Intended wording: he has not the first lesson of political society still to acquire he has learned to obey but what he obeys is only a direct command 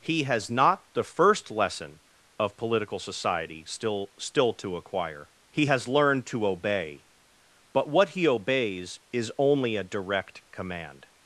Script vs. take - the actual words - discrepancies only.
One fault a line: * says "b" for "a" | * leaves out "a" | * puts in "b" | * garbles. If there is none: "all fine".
* puts in "still"